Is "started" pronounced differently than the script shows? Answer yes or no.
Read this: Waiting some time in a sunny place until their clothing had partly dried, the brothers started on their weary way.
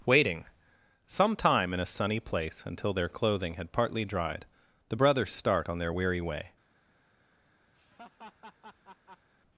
yes